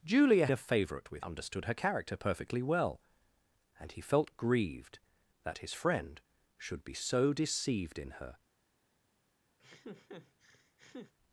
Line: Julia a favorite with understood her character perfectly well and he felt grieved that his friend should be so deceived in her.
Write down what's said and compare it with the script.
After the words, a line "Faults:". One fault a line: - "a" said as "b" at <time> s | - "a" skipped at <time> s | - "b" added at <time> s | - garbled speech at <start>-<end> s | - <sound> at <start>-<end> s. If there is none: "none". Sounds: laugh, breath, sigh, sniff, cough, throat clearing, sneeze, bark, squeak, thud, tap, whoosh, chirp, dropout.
Julia a favorite with understood her character perfectly well and he felt grieved that his friend should be so deceived in her.
Faults:
- laugh at 9.6-11.1 s